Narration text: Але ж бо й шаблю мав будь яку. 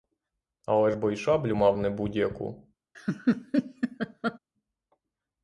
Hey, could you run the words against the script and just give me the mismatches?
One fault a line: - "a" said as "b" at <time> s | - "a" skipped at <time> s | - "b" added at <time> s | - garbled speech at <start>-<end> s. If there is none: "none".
- "не" added at 1.8 s